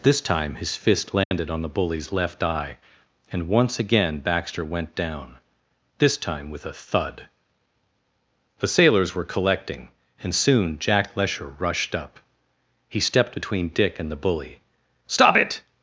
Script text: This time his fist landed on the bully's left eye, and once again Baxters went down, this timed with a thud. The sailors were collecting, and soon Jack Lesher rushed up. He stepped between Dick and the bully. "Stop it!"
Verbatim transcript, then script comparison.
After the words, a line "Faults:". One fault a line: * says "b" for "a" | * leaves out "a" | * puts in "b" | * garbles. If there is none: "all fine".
This time his fist landed on the bully's left eye, and once again Baxter went down, this time with a thud. The sailors were collecting, and soon Jack Lesher rushed up. He stepped between Dick and the bully. "Stop it!"
Faults:
* says "Baxter" for "Baxters"
* says "time" for "timed"